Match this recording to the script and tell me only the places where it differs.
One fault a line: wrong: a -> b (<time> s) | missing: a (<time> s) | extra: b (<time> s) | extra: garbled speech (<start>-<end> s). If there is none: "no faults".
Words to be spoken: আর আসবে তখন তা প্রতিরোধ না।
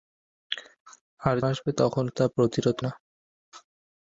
no faults